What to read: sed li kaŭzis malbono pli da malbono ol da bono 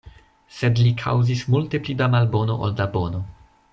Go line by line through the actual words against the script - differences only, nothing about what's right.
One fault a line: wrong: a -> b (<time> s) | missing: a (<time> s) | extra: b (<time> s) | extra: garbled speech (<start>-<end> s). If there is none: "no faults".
wrong: malbono -> multe (1.6 s)